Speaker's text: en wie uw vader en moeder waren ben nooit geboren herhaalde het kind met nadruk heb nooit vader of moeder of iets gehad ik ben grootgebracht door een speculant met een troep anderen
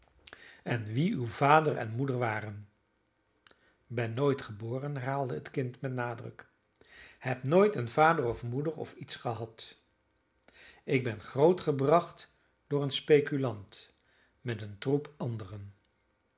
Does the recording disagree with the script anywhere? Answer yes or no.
yes